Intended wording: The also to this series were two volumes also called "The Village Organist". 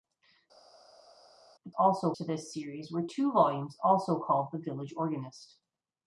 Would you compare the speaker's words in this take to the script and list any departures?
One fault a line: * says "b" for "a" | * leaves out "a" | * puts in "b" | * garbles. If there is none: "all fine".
all fine